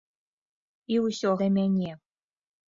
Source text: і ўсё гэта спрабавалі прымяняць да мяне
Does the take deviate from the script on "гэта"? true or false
true